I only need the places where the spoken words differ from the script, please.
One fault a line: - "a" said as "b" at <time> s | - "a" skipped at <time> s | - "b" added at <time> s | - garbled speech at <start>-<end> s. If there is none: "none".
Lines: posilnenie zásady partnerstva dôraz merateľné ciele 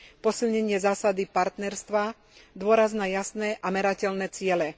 - "na jasné a" added at 2.9 s